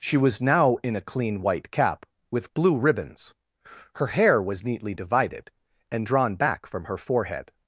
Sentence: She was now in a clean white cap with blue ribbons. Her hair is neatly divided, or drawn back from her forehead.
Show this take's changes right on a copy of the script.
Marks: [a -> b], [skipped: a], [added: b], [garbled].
She was now in a clean white cap with blue ribbons. Her hair [is -> was] neatly divided, [or -> and] drawn back from her forehead.